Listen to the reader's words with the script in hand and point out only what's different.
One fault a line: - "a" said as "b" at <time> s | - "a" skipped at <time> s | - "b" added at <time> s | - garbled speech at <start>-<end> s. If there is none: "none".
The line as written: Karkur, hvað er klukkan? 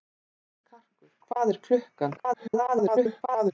- garbled speech at 2.2-3.5 s